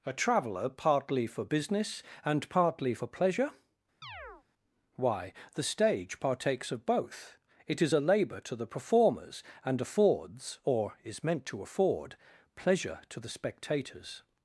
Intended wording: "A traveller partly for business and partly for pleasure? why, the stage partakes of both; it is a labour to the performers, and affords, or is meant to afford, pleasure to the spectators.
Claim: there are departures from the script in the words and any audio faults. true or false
true